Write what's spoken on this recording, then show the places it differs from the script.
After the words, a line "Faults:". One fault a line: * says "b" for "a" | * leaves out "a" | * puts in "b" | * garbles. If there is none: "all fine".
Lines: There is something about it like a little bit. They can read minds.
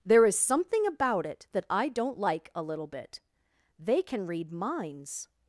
There is something about it that I don't like a little bit. They can read minds.
Faults:
* puts in "that I don't"